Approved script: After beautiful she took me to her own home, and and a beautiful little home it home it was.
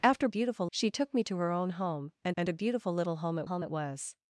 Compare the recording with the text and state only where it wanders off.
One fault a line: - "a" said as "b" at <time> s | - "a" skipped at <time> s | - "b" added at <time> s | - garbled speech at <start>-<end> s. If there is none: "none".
none